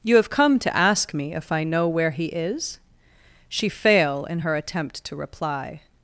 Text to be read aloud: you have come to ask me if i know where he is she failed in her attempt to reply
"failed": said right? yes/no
no